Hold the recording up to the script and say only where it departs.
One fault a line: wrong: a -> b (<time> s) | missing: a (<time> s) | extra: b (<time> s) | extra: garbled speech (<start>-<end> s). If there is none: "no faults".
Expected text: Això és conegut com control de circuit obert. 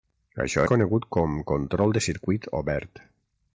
missing: és (0.6 s)